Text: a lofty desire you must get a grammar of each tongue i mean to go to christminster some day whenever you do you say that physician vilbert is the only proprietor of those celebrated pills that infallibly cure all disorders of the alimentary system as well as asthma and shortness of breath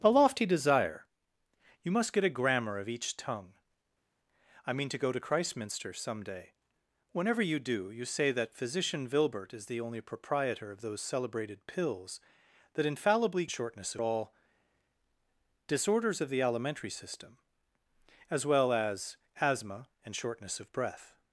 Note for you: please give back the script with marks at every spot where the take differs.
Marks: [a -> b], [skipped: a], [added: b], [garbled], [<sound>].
a lofty desire you must get a grammar of each tongue i mean to go to christminster some day whenever you do you say that physician vilbert is the only proprietor of those celebrated pills that infallibly [cure -> shortness] all disorders of the alimentary system as well as asthma and shortness of breath